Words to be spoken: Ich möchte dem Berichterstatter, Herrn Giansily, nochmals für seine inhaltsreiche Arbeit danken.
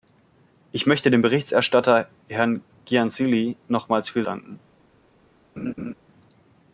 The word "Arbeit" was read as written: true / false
false